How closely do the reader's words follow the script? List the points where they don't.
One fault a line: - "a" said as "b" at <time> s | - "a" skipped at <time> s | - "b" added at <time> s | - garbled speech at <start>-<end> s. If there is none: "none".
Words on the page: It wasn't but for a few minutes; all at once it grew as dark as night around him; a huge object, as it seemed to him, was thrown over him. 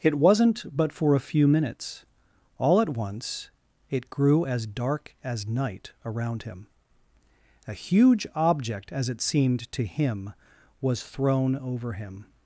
none